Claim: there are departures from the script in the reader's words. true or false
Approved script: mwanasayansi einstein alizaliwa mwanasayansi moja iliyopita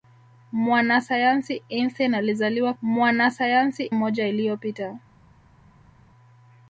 false